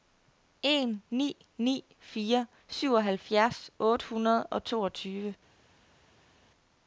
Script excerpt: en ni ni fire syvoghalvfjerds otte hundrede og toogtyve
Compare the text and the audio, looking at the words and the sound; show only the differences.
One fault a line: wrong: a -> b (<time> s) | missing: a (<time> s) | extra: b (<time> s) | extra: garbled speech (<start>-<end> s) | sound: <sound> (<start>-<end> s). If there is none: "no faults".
no faults